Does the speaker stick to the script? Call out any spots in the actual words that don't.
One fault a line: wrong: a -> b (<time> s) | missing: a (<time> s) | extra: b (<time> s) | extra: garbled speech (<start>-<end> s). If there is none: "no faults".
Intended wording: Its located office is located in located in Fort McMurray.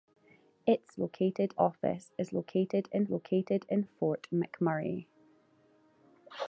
no faults